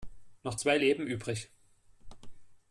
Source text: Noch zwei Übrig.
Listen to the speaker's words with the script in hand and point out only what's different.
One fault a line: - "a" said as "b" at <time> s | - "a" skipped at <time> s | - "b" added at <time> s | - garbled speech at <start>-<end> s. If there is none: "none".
- "Leben" added at 0.8 s